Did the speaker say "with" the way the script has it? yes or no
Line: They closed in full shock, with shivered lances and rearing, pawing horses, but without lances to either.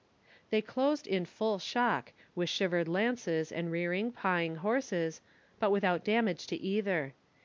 yes